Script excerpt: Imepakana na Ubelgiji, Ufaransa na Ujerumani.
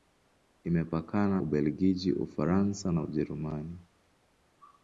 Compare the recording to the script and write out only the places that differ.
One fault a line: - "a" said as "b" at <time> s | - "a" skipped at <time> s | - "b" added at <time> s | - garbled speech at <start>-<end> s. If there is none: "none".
- "na" skipped at 1.4 s